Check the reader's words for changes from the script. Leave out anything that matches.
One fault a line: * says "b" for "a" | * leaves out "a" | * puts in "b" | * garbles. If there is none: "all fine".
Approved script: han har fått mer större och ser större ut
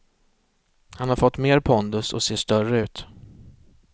* says "pondus" for "större"